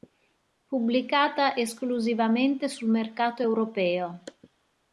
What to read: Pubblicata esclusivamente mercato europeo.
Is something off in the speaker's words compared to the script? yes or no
yes